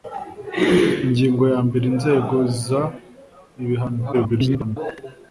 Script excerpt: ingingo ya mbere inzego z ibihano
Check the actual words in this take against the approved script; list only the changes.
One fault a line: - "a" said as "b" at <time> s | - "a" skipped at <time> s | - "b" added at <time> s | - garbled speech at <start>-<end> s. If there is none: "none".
- garbled speech at 4.1-4.8 s